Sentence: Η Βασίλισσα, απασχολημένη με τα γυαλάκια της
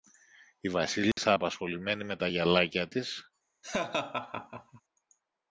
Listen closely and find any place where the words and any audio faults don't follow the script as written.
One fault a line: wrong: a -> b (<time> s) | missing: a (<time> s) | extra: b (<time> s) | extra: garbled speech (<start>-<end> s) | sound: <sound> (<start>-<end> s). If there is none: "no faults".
sound: dropout (1.1-1.2 s)
sound: laugh (3.6-4.8 s)